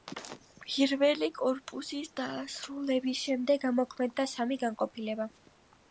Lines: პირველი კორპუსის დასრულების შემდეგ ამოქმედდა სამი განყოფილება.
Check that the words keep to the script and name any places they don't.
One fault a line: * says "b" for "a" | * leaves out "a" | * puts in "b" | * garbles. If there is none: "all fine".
all fine